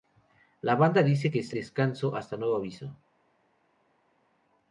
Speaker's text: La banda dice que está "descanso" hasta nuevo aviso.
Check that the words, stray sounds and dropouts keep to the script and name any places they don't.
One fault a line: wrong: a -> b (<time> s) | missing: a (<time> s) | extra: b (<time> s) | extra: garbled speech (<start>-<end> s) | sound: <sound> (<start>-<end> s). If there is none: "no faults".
no faults